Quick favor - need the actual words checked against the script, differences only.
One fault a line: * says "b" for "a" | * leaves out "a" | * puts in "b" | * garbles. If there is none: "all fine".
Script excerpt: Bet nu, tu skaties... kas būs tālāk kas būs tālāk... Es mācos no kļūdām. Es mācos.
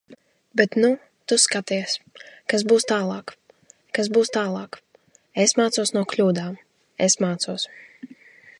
all fine